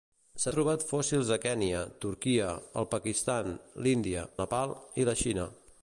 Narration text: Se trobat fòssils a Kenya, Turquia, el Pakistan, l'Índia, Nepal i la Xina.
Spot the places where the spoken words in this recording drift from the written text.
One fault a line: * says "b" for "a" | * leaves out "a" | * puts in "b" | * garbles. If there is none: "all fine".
all fine